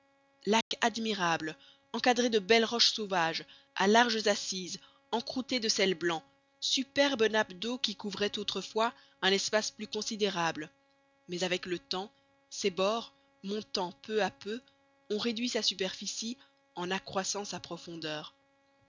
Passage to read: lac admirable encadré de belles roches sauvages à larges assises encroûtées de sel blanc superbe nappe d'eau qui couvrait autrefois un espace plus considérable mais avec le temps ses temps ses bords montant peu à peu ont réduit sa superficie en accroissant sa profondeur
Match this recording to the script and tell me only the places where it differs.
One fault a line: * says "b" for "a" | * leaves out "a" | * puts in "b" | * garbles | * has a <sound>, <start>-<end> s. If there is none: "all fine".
* has a dropout, 0.6-0.7 s
* leaves out "temps ses"